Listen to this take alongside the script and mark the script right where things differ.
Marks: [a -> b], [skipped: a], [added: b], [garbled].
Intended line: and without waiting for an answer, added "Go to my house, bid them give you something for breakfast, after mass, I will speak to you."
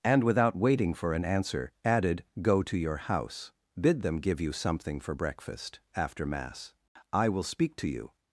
and without waiting for an answer, added "Go to [my -> your] house, bid them give you something for breakfast, after mass, I will speak to you."